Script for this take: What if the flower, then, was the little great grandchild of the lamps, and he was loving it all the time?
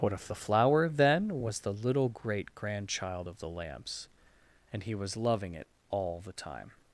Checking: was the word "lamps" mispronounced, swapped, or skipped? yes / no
no